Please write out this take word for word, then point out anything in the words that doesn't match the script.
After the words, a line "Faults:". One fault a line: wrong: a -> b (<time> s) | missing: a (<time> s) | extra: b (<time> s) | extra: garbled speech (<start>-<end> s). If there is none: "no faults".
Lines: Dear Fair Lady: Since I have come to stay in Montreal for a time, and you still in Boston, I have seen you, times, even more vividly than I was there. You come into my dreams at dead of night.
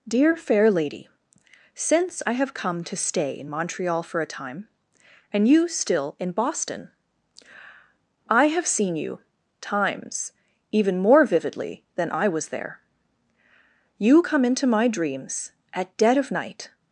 Dear Fair Lady: Since I have come to stay in Montreal for a time, and you still in Boston, I have seen you, times, even more vividly than I was there. You come into my dreams at dead of night.
Faults:
no faults